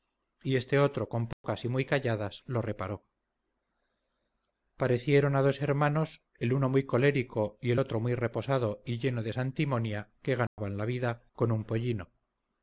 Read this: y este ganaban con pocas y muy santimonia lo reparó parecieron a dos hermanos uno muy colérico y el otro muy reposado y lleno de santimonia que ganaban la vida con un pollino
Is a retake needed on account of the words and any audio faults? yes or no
yes